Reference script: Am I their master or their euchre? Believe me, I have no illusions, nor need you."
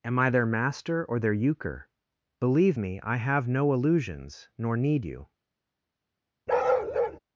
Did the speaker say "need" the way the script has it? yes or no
yes